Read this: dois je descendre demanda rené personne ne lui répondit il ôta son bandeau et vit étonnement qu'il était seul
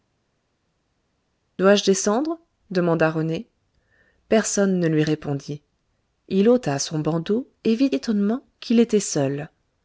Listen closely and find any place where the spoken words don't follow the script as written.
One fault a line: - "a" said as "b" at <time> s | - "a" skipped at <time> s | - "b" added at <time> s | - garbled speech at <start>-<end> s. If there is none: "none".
none